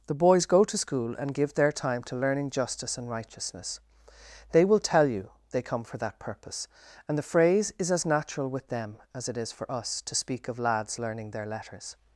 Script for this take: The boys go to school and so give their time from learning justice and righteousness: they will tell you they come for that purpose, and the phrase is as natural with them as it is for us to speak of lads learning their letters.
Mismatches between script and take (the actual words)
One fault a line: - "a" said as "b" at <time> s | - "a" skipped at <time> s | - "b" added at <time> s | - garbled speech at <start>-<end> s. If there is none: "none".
- "so" skipped at 1.3 s
- "from" said as "to" at 2.0 s